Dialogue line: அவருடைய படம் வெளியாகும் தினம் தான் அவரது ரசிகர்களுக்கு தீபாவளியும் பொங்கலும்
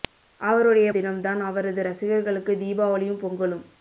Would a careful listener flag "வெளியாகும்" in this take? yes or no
yes